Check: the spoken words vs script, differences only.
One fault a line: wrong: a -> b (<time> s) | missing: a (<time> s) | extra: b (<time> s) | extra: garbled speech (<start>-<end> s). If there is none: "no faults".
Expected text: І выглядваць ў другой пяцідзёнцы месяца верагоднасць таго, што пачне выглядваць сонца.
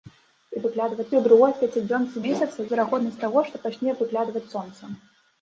no faults